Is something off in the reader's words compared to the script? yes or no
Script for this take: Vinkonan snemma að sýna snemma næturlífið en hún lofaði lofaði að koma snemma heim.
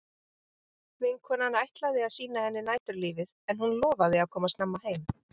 yes